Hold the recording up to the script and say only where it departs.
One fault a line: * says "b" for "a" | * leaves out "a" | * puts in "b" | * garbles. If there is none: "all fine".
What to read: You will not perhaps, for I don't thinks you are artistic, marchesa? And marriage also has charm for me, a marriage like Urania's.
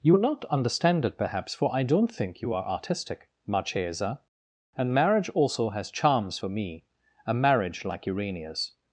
* puts in "understand it"
* says "think" for "thinks"
* says "charms" for "charm"